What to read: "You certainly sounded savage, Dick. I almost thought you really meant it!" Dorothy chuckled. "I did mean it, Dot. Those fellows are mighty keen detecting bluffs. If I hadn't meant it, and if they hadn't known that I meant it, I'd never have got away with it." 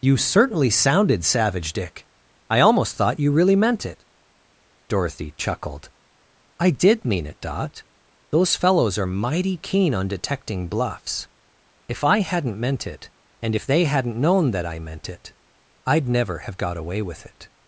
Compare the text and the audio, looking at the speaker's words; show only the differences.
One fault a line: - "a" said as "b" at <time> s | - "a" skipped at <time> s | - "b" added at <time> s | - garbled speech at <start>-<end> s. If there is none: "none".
- "on" added at 9.9 s